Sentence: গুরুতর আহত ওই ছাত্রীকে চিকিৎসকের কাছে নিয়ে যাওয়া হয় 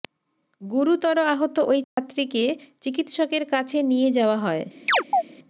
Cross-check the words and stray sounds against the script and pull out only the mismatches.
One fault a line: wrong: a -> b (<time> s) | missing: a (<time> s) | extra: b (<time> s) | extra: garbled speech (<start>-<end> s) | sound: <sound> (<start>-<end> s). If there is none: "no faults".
sound: dropout (1.8-2.0 s)
sound: chirp (4.9-5.2 s)